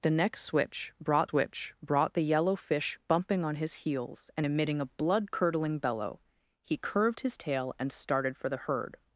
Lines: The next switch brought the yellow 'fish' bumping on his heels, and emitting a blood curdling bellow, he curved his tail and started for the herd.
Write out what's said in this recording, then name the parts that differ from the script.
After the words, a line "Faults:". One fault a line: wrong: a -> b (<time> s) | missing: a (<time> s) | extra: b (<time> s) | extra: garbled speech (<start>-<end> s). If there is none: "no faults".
The next switch brought switch brought the yellow 'fish' bumping on his heels, and emitting a blood curdling bellow, he curved his tail and started for the herd.
Faults:
extra: switch brought (1.2 s)